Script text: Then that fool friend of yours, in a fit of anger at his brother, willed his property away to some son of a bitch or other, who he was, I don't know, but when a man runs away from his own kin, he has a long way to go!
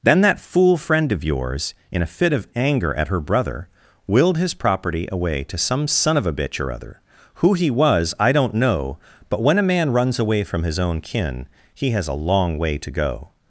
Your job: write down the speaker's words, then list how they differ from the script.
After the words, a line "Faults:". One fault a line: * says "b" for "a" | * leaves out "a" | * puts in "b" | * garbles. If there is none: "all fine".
Then that fool friend of yours, in a fit of anger at her brother, willed his property away to some son of a bitch or other, who he was, I don't know, but when a man runs away from his own kin, he has a long way to go!
Faults:
* says "her" for "his"